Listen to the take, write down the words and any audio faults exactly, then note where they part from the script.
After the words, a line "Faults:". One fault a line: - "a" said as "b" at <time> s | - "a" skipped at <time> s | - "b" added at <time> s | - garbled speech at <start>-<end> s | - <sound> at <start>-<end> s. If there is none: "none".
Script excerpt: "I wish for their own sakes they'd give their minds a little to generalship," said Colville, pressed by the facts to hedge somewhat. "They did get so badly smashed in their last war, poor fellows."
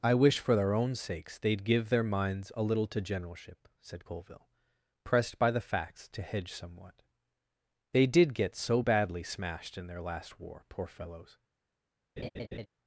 "I wish for their own sakes they'd give their minds a little to generalship," said Colville, pressed by the facts to hedge somewhat. "They did get so badly smashed in their last war, poor fellows."
Faults:
- laugh at 12.2-12.7 s